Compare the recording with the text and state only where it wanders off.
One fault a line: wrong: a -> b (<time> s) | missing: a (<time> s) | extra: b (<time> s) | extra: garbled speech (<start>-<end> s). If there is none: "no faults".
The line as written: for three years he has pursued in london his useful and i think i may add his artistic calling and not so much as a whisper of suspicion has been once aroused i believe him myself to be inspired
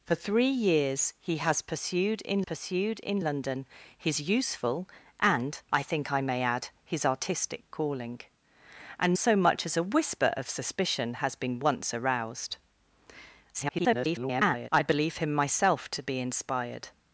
extra: pursued in (2.4 s)
missing: not (9.2 s)
extra: garbled speech (13.5-14.7 s)